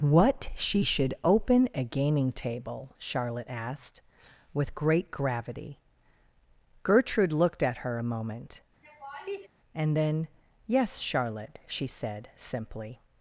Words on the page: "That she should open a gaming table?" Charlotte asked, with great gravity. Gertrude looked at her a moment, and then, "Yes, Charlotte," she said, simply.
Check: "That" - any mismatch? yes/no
yes